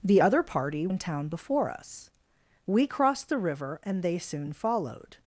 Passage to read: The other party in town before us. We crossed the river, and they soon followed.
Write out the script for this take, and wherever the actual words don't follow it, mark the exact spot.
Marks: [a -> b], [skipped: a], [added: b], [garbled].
The other party in town before us. We crossed the river, and they soon followed.